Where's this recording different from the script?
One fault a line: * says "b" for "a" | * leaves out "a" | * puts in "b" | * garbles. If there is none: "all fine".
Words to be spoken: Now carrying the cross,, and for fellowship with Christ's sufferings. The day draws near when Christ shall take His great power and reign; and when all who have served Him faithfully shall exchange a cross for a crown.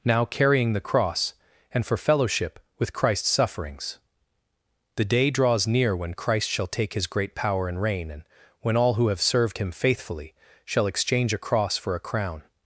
all fine